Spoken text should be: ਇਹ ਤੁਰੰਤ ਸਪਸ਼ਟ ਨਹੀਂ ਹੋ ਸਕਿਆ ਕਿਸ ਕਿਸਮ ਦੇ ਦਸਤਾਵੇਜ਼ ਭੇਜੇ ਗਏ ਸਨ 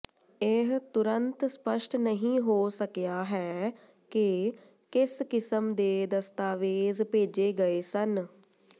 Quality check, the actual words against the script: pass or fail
fail